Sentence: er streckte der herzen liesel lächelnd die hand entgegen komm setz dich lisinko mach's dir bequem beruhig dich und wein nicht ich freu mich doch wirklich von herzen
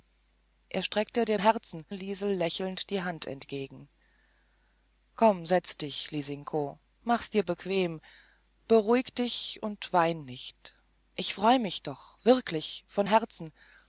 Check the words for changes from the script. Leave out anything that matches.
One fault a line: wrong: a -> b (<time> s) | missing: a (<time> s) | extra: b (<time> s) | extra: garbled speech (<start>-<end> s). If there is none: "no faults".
no faults